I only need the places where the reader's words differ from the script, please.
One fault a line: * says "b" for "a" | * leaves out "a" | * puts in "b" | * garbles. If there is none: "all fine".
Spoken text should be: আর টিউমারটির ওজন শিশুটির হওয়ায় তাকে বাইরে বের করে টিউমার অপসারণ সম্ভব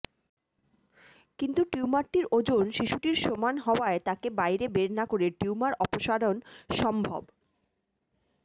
* says "কিন্তু" for "আর"
* puts in "সমান"
* puts in "না"